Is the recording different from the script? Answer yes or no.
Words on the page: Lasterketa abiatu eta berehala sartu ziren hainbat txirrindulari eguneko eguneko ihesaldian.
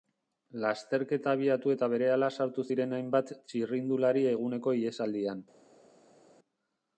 yes